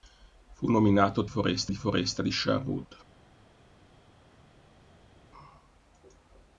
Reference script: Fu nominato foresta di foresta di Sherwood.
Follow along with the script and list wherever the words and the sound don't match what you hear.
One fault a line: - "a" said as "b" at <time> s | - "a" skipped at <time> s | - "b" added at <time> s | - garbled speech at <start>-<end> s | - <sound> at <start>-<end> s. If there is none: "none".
none